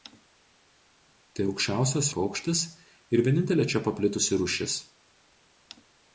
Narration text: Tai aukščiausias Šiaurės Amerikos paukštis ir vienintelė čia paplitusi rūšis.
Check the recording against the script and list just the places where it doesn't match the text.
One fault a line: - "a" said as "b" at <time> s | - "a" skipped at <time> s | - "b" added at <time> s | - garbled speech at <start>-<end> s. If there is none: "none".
- "Šiaurės Amerikos" skipped at 2.1 s